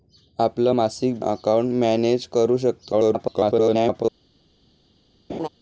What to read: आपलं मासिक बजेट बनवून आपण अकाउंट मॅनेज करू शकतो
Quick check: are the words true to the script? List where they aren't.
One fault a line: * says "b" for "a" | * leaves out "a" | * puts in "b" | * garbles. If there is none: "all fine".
* leaves out "बजेट बनवून आपण"
* garbles